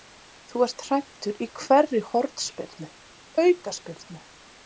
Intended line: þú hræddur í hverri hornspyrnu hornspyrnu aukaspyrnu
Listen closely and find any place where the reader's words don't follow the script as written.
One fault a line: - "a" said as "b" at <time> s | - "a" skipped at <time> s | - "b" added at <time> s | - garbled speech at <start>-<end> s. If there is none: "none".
- "ert" added at 0.7 s
- "hornspyrnu" skipped at 2.9 s